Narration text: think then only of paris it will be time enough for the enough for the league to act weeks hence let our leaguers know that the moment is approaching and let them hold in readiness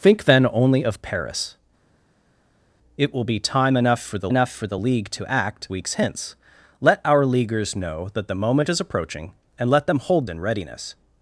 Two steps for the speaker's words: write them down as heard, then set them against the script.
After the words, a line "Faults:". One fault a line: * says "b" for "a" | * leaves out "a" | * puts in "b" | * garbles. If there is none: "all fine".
think then only of paris it will be time enough for the enough for the league to act weeks hence let our leaguers know that the moment is approaching and let them hold in readiness
Faults:
all fine